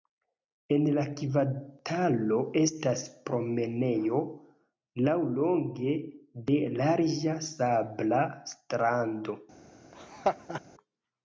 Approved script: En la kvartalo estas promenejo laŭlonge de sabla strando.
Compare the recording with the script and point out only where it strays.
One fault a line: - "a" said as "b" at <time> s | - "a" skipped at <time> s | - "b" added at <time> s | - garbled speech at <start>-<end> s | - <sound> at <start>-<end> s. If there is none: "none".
- "larĝa" added at 6.8 s
- laugh at 9.9-10.6 s